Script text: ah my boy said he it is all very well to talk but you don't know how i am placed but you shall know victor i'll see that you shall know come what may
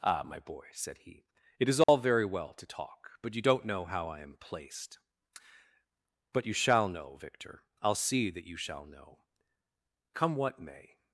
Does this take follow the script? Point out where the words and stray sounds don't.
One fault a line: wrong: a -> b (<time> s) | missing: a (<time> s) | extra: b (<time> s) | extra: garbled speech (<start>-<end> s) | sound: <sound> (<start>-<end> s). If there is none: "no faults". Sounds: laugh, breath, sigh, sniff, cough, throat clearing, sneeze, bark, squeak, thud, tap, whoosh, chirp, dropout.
sound: dropout (1.8-1.9 s)